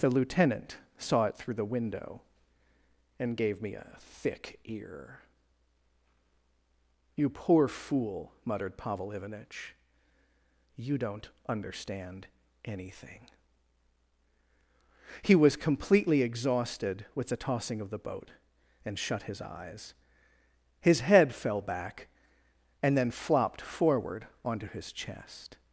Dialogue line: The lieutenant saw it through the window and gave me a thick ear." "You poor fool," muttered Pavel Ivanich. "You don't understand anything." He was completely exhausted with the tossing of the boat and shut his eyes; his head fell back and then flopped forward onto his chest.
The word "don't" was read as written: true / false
true